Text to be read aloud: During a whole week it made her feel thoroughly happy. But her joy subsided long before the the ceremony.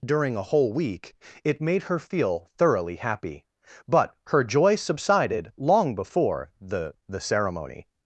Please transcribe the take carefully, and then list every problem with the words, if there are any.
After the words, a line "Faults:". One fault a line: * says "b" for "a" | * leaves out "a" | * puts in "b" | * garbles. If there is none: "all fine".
During a whole week it made her feel thoroughly happy. But her joy subsided long before the the ceremony.
Faults:
all fine